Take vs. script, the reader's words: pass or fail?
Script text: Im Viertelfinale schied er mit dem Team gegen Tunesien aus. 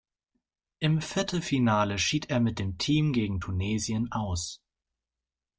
pass